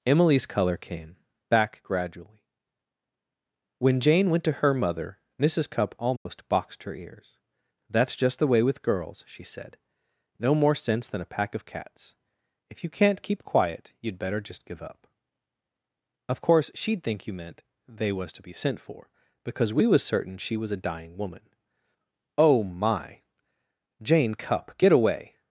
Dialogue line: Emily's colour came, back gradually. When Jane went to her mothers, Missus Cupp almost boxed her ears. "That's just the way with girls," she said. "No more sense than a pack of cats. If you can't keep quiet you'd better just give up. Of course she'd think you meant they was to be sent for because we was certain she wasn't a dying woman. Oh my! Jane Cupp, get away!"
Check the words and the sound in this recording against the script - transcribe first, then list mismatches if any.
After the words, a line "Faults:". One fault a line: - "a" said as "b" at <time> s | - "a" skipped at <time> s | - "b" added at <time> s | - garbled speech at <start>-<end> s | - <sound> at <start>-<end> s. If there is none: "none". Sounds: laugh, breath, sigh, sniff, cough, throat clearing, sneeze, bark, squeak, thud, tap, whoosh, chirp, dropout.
Emily's colour came, back gradually. When Jane went to her mother, Missus Cupp almost boxed her ears. "That's just the way with girls," she said. "No more sense than a pack of cats. If you can't keep quiet you'd better just give up. Of course she'd think you meant they was to be sent for because we was certain she was a dying woman. Oh my! Jane Cupp, get away!"
Faults:
- "mothers" said as "mother" at 4.7 s
- dropout at 6.2-6.3 s
- "wasn't" said as "was" at 20.6 s